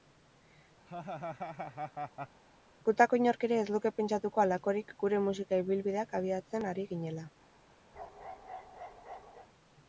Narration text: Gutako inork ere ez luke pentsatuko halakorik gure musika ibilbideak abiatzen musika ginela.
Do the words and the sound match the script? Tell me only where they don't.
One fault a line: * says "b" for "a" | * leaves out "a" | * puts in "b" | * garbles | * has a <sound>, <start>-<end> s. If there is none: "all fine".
* has a laugh, 0.9-2.4 s
* says "ari" for "musika"
* has a bark, 7.9-9.5 s